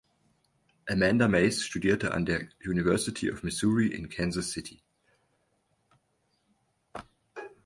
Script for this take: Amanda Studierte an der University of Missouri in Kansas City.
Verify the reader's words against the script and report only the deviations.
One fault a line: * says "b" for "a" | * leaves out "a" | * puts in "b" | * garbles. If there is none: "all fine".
* puts in "Mace"